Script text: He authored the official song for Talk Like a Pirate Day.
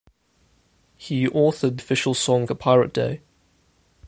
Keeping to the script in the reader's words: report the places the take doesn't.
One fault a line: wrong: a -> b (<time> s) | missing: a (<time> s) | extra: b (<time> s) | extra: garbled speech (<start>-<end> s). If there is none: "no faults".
missing: the (1.8 s)
missing: for Talk Like (2.5 s)